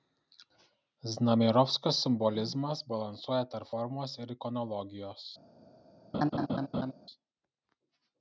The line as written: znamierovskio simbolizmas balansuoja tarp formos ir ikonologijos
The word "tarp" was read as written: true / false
true